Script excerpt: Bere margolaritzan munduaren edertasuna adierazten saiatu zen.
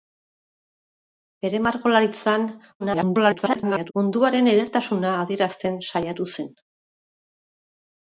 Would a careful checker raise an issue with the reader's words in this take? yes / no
yes